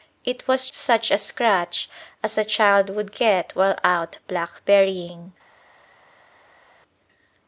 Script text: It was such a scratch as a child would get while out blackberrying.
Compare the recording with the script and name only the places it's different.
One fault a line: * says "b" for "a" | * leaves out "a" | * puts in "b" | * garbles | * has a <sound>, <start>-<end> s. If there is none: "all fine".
all fine